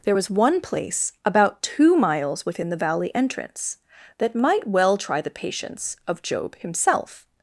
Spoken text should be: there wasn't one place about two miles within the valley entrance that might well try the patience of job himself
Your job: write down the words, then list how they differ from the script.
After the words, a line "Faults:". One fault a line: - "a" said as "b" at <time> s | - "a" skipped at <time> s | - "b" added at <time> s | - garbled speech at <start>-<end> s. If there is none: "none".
there was one place about two miles within the valley entrance that might well try the patience of job himself
Faults:
- "wasn't" said as "was" at 0.1 s